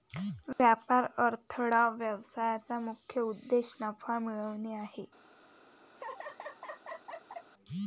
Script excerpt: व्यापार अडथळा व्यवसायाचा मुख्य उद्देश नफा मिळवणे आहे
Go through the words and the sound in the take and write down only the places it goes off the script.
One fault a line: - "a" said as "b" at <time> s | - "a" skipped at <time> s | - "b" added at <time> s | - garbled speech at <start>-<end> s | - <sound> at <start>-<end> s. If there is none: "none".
- dropout at 0.5-0.6 s
- laugh at 5.9-7.5 s